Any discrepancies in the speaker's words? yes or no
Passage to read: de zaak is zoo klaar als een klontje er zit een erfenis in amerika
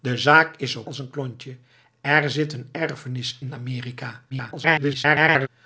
yes